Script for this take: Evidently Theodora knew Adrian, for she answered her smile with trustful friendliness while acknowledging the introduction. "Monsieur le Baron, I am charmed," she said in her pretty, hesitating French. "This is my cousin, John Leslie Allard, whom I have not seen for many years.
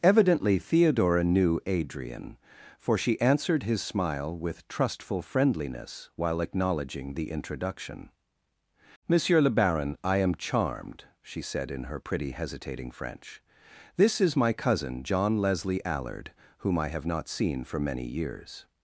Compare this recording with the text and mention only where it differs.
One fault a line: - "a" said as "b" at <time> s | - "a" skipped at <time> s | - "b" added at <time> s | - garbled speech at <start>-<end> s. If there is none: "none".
- "her" said as "his" at 3.6 s